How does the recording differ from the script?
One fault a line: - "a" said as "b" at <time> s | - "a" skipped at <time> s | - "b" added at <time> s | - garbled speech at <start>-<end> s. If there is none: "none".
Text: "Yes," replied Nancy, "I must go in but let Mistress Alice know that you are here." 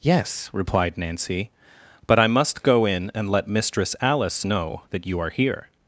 - "but" added at 2.1 s
- "but" said as "and" at 3.1 s